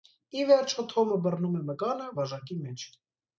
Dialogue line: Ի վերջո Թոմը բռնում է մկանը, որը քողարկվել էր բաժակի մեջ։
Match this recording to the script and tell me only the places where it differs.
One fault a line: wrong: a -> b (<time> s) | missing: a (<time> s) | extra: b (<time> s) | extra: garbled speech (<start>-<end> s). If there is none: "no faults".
missing: որը քողարկվել էր (2.1 s)